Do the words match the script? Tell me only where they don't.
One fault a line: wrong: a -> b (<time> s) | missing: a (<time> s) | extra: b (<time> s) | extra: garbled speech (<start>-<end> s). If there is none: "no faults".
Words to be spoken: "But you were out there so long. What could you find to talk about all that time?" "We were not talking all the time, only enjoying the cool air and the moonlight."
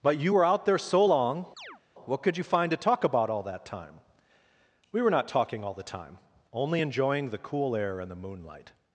no faults